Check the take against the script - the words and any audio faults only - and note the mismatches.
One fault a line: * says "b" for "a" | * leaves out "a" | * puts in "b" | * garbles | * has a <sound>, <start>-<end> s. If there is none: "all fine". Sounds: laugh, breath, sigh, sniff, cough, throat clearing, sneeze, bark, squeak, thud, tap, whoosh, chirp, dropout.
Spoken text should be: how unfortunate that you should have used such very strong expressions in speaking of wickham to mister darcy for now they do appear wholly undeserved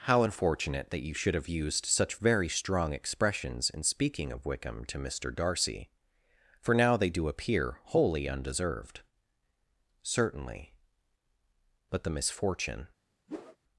* puts in "certainly but the misfortune"
* has a whoosh, 13.3-13.6 s